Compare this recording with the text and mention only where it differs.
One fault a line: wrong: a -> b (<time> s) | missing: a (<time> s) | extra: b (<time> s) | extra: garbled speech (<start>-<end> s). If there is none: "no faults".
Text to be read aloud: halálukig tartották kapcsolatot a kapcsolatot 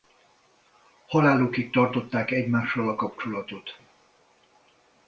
wrong: kapcsolatot -> egymással (2.3 s)